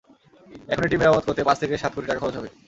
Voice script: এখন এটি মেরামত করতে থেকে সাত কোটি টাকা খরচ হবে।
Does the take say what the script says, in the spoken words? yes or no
no